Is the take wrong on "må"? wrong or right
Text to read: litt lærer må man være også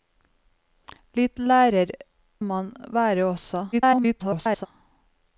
wrong